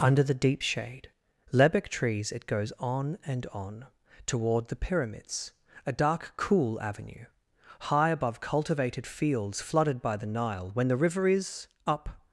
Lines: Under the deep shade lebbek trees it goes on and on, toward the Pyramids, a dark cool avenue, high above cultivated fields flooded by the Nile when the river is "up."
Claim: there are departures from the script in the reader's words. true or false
false